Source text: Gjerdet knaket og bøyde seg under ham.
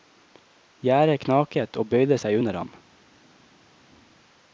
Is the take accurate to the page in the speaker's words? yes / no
yes